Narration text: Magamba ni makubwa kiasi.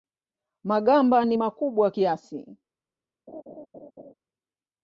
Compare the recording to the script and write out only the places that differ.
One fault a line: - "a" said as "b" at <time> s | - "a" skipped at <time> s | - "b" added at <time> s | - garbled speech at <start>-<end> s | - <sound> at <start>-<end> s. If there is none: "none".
- laugh at 3.3-4.1 s